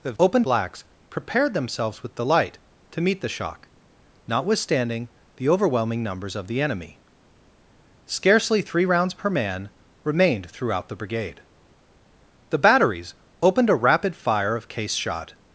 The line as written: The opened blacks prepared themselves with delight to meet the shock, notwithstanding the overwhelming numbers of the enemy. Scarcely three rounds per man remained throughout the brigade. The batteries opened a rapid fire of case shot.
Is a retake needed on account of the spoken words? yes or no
no